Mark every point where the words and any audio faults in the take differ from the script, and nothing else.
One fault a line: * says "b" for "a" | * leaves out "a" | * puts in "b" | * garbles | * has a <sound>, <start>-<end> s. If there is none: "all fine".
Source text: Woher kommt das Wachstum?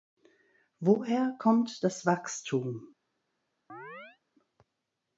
* has a chirp, 3.7-4.2 s